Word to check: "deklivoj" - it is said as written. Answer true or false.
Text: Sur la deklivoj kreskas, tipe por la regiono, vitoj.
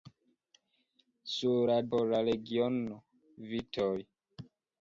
false